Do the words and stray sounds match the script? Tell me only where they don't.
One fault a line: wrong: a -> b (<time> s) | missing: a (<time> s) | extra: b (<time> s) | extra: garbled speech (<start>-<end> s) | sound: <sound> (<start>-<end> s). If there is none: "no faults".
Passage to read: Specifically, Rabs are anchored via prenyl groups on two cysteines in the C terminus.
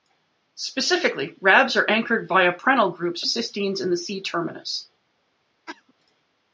missing: on two (3.2 s)
sound: cough (5.7-5.9 s)